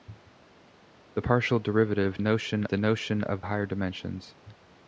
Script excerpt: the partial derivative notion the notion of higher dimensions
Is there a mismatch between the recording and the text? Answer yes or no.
no